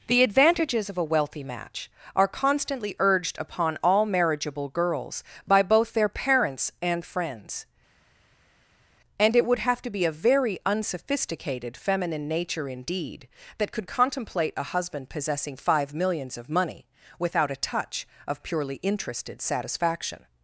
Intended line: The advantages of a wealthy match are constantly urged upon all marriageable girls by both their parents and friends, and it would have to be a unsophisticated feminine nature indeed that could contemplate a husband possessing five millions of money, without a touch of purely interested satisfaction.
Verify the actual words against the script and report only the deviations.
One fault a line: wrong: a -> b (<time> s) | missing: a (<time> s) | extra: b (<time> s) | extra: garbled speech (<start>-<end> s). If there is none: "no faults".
extra: very (10.1 s)